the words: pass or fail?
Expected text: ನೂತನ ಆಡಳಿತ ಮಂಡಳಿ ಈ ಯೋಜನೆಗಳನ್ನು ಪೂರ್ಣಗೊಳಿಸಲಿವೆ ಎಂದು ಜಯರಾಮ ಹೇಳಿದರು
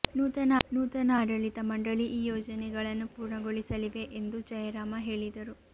fail